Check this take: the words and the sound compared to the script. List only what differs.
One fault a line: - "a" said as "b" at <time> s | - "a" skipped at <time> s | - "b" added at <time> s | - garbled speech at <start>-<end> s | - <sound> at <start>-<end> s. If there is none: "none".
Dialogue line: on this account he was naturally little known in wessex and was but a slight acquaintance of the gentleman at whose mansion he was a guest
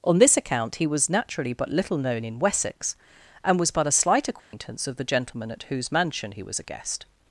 - "but" added at 1.5 s
- dropout at 4.4-4.5 s